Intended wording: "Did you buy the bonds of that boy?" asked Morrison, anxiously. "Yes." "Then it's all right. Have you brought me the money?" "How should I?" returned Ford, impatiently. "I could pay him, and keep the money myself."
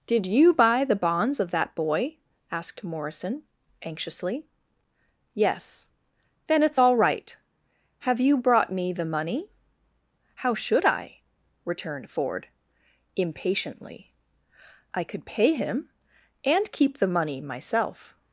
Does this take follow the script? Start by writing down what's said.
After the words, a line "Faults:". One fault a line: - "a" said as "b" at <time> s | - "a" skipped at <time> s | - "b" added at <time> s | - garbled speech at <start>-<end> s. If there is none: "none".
"Did you buy the bonds of that boy?" asked Morrison, anxiously. "Yes." "Then it's all right. Have you brought me the money?" "How should I?" returned Ford, impatiently. "I could pay him, and keep the money myself."
Faults:
none